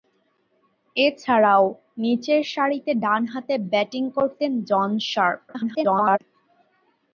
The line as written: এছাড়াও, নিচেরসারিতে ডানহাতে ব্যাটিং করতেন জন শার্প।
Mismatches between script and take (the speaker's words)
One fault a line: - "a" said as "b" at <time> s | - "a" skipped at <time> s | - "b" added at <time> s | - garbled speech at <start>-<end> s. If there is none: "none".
- garbled speech at 5.5-6.2 s